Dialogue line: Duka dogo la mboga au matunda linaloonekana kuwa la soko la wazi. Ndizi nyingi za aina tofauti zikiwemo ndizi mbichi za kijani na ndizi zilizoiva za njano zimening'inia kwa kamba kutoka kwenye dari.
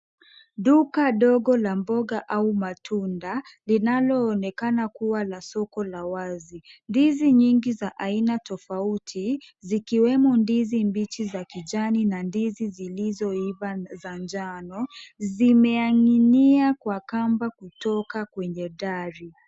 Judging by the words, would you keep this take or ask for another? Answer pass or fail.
pass